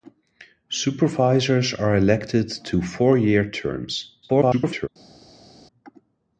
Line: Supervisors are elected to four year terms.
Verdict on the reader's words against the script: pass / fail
fail